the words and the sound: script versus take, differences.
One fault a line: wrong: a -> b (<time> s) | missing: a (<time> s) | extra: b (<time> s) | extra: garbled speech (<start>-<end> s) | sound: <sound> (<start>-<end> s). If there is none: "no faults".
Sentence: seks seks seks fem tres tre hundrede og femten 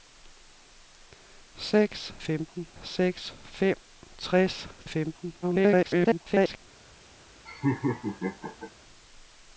wrong: seks -> femten (2.2 s)
missing: tre hundrede (4.7 s)
extra: garbled speech (5.4-6.6 s)
sound: laugh (7.4-8.7 s)